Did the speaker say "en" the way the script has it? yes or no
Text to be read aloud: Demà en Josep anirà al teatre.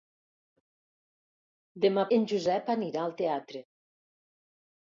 yes